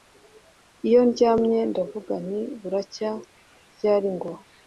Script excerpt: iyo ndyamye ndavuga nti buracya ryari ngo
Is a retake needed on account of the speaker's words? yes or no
no